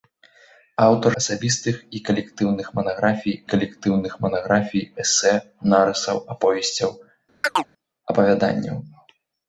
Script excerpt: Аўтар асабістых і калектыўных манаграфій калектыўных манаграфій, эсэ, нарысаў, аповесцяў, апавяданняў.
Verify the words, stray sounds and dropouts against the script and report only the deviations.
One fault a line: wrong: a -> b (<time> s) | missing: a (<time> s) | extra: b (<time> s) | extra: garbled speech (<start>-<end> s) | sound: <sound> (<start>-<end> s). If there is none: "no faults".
sound: chirp (7.4-7.7 s)